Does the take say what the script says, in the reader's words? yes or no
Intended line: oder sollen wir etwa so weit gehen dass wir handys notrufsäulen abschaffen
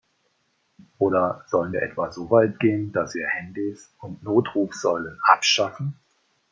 no